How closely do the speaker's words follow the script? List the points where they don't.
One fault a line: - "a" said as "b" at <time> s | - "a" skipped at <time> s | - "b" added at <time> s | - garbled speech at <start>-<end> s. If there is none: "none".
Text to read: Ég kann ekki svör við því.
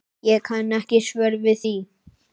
none